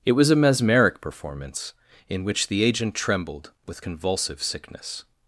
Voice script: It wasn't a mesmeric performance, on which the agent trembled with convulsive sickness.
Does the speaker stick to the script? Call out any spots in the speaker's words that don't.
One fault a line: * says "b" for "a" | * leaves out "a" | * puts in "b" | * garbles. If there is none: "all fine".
* says "was" for "wasn't"
* says "in" for "on"